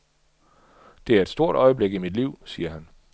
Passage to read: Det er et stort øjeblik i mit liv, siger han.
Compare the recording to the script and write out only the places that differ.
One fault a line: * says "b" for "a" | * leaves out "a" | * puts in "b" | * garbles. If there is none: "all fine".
all fine